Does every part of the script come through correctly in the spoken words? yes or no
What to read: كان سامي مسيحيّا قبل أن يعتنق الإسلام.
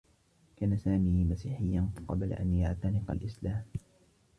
yes